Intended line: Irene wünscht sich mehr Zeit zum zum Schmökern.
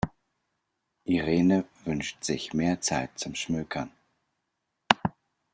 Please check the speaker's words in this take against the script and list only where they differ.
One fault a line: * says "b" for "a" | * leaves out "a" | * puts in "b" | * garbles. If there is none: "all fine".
* leaves out "zum"